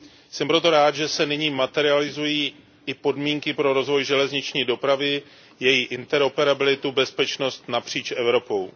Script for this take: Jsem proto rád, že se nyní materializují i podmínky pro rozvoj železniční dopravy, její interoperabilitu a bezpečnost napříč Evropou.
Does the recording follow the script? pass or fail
pass